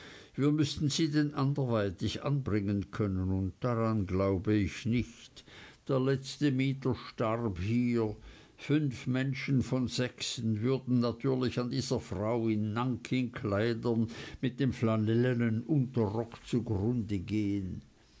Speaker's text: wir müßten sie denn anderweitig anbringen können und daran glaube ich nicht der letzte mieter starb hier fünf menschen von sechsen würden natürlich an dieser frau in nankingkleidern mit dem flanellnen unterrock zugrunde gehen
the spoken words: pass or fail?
pass